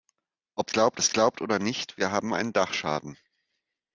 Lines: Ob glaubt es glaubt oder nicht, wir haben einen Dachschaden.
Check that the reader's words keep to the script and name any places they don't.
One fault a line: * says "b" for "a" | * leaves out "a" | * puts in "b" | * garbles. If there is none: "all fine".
all fine